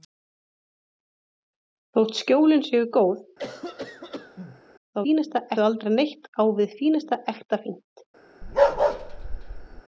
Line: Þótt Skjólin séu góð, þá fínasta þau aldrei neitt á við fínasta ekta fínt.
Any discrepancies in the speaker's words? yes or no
no